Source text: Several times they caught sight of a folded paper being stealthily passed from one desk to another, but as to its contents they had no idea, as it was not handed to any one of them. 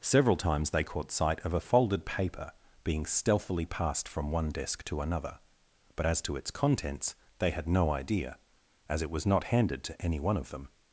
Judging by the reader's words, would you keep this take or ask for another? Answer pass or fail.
pass